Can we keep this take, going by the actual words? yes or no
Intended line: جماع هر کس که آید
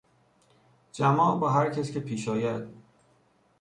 no